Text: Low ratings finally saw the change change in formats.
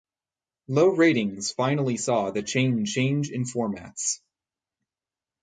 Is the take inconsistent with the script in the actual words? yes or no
no